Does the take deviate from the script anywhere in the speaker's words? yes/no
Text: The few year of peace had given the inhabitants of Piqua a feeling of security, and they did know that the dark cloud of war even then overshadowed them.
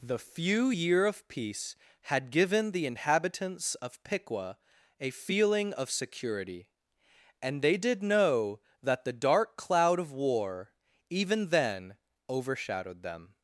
no